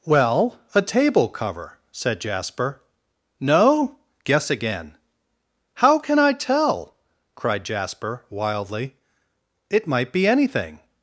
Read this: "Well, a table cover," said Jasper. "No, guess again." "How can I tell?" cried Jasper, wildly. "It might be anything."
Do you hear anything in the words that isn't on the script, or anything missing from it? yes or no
no